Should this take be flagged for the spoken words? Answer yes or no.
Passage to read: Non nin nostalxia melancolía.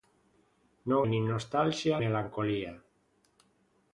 no